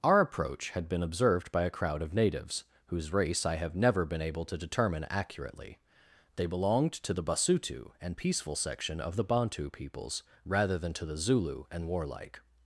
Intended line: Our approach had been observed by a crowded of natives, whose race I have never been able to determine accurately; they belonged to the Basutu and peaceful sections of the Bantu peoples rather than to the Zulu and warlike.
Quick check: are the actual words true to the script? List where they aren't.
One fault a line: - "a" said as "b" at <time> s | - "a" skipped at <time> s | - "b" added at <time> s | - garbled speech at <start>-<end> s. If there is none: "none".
- "crowded" said as "crowd" at 1.7 s
- "sections" said as "section" at 8.5 s